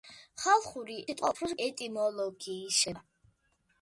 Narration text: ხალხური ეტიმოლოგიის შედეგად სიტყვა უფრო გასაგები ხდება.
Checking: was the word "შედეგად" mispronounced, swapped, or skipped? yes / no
yes